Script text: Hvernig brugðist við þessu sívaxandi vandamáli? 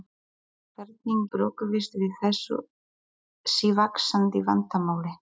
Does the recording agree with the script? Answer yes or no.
yes